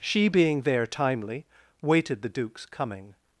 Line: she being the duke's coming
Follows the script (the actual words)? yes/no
no